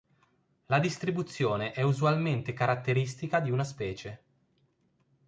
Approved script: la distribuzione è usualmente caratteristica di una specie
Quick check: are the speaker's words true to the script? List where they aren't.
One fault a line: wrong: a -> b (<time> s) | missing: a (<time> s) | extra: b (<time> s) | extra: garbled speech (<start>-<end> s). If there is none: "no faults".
no faults